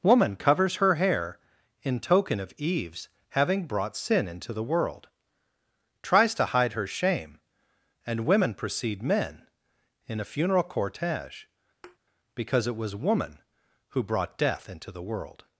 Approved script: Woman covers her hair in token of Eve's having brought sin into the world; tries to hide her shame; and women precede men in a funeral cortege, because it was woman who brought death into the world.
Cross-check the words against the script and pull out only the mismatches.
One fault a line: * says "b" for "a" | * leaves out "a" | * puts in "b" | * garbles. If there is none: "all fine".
all fine